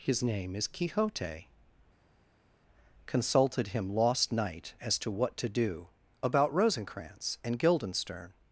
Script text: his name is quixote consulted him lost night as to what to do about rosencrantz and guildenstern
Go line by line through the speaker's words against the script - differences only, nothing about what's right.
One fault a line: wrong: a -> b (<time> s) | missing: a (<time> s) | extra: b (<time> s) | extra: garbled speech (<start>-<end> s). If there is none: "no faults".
no faults